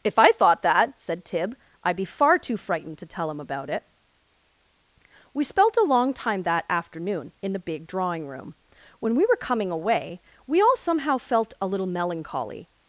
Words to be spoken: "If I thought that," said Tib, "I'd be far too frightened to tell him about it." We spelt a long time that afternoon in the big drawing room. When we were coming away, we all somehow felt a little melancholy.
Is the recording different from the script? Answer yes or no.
no